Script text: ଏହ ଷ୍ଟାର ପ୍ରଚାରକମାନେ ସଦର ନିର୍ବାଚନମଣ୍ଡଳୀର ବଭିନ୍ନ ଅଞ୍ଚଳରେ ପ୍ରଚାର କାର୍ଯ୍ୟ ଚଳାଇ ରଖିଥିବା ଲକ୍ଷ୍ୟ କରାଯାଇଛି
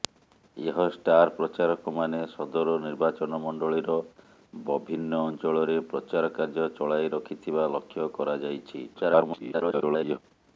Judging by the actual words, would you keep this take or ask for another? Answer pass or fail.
fail